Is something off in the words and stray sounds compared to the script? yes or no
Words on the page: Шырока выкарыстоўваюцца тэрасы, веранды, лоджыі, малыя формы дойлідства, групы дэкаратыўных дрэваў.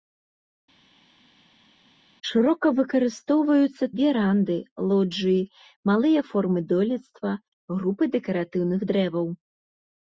yes